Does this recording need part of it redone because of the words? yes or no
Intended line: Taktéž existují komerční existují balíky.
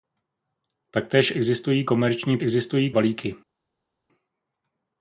no